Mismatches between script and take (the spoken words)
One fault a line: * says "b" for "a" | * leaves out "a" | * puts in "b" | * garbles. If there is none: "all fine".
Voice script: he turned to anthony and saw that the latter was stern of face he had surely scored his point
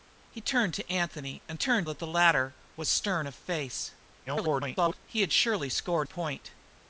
* says "turned" for "saw"
* garbles
* leaves out "his"